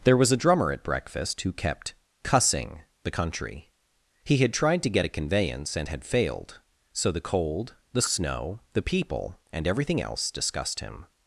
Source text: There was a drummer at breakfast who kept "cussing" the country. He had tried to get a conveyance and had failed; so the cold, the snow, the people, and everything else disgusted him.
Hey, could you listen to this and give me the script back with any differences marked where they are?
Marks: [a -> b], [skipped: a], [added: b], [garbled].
There was a drummer at breakfast who kept "cussing" the country. He had tried to get a conveyance and had failed; so the cold, the snow, the people, and everything else [disgusted -> disgust] him.